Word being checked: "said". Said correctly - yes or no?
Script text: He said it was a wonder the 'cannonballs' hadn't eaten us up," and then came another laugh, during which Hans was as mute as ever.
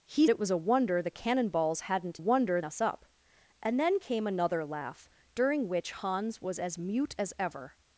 no